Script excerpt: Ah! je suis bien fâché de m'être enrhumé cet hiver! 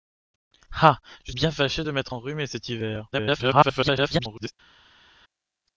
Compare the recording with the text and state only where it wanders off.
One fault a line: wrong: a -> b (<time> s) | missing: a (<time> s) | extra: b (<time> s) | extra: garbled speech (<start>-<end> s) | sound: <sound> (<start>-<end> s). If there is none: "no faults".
missing: suis (1.3 s)
extra: garbled speech (3.1-4.5 s)